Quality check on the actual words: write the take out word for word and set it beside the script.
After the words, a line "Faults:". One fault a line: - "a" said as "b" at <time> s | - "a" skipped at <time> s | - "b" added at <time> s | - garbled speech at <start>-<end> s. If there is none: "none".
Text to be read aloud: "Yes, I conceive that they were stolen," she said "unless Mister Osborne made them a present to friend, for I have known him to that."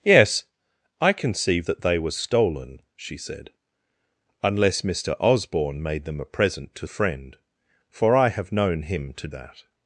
"Yes, I conceive that they were stolen," she said "unless Mister Osborne made them a present to friend, for I have known him to that."
Faults:
none